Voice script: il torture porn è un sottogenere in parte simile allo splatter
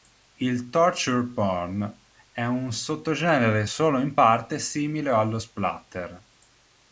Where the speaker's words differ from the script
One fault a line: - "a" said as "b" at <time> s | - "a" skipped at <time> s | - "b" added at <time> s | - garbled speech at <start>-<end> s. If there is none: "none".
- "solo" added at 3.6 s